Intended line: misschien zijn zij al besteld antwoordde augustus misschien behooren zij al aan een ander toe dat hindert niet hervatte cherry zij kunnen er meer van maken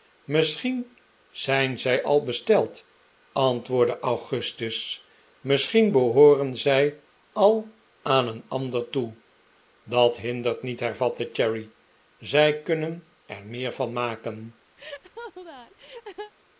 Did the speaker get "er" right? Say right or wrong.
right